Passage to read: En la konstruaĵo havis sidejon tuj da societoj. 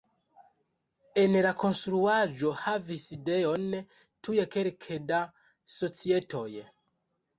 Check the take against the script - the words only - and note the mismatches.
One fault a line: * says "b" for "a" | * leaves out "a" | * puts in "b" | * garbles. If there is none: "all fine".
* puts in "kelke"